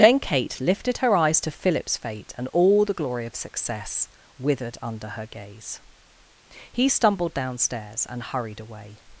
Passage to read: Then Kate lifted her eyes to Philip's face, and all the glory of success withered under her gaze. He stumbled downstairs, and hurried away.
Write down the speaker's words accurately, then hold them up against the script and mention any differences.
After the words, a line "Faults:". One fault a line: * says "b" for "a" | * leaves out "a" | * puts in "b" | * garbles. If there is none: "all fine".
Then Kate lifted her eyes to Philip's fate, and all the glory of success withered under her gaze. He stumbled downstairs, and hurried away.
Faults:
* says "fate" for "face"